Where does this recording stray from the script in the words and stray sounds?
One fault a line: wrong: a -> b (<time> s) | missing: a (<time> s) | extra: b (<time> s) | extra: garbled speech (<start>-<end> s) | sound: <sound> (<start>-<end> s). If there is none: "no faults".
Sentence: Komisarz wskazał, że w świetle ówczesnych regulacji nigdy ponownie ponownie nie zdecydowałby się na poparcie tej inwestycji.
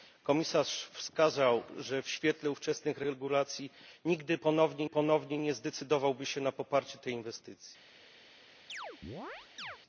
sound: chirp (8.7-9.8 s)